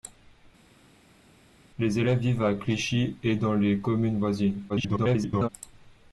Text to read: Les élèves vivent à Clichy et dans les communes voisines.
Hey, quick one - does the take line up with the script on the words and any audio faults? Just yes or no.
no